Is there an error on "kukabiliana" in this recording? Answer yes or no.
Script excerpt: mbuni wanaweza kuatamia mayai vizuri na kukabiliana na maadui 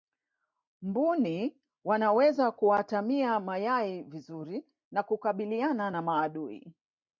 no